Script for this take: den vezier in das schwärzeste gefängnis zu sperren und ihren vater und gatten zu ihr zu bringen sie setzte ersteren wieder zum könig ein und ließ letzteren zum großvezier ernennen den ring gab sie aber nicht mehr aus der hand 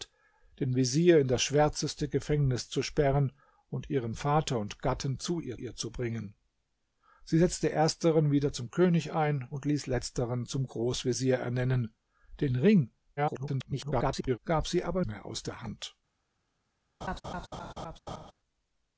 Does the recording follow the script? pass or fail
fail